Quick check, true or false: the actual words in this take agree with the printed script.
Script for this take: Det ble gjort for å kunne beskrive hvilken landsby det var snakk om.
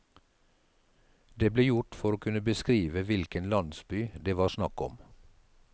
true